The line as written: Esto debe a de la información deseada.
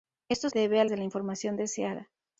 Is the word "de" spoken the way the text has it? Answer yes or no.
yes